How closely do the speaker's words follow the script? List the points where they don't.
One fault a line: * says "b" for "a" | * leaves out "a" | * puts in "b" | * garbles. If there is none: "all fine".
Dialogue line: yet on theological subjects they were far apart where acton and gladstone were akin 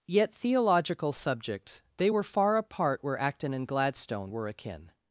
* leaves out "on"